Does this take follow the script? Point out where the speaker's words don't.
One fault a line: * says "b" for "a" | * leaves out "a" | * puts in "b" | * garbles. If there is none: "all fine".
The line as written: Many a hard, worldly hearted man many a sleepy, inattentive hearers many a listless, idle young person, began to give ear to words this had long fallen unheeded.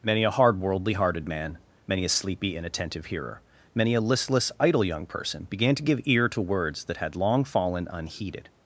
* says "hearer" for "hearers"
* says "that" for "this"